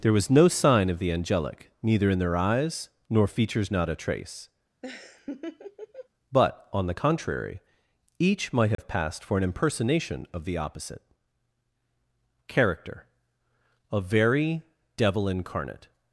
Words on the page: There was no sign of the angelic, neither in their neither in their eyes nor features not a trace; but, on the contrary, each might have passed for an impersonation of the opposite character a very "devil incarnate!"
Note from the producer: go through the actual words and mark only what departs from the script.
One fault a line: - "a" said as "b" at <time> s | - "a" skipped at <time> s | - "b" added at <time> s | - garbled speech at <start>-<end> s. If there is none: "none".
- "neither in their" skipped at 2.4 s